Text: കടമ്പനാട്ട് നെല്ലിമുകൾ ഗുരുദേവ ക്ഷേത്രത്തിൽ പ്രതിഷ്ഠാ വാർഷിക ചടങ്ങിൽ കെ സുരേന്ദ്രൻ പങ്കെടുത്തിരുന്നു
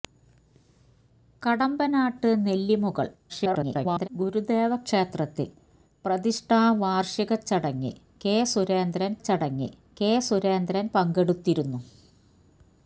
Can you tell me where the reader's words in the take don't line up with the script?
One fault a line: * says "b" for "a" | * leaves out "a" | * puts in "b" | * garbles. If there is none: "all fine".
* garbles
* puts in "ചടങ്ങിൽ കെ സുരേന്ദ്രൻ"